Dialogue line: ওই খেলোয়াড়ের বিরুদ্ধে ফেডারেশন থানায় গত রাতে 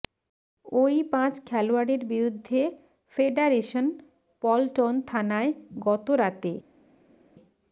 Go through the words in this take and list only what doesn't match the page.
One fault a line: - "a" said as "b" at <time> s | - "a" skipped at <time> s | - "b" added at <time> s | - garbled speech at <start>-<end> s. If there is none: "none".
- "পাঁচ" added at 1.1 s
- "পল্টন" added at 4.4 s